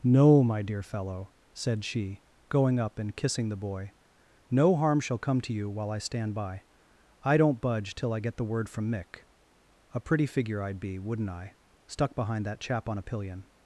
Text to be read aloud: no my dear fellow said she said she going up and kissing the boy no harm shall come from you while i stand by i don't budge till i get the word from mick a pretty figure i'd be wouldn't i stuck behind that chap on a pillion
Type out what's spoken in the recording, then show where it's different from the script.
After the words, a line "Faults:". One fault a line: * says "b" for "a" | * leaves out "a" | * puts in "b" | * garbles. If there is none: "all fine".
no my dear fellow said she going up and kissing the boy no harm shall come to you while i stand by i don't budge till i get the word from mick a pretty figure i'd be wouldn't i stuck behind that chap on a pillion
Faults:
* leaves out "said she"
* says "to" for "from"